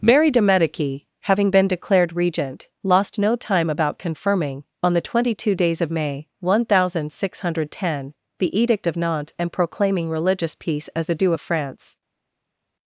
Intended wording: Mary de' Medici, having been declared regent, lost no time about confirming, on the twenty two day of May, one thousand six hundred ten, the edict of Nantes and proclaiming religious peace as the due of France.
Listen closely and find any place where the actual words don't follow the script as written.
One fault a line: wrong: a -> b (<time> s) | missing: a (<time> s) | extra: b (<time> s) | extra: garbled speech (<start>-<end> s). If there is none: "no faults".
wrong: day -> days (5.5 s)